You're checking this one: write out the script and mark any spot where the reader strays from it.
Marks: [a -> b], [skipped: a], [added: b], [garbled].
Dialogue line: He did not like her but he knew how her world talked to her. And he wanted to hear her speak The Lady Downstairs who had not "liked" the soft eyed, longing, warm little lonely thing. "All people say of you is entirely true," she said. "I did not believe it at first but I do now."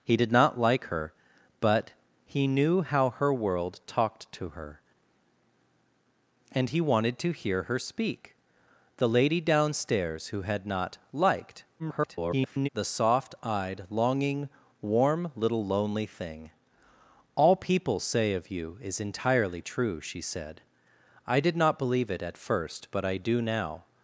He did not like her but he knew how her world talked to her. And he wanted to hear her speak The Lady Downstairs who had not "liked" [garbled] the soft eyed, longing, warm little lonely thing. "All people say of you is entirely true," she said. "I did not believe it at first but I do now."